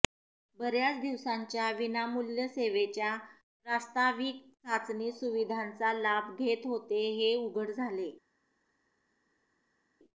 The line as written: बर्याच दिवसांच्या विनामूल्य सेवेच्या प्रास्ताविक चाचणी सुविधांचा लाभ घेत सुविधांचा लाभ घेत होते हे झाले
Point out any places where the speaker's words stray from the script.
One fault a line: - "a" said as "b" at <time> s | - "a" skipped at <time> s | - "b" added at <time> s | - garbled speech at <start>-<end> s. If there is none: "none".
- "सुविधांचा लाभ घेत" skipped at 6.6 s
- "उघड" added at 7.4 s